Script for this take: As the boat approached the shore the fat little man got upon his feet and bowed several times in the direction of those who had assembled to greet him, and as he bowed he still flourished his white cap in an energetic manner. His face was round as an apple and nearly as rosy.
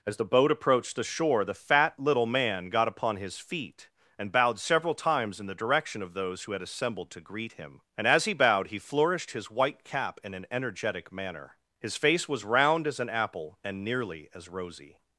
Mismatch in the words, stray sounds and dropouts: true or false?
true